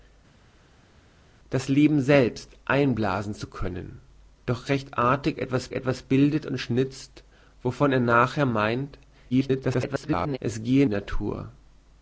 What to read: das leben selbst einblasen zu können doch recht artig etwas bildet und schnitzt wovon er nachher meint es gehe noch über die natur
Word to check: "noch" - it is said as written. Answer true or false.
false